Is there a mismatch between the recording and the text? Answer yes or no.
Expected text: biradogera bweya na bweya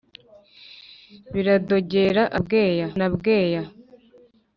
no